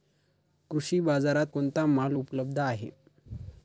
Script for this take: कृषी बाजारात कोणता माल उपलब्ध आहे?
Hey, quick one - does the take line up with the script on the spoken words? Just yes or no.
yes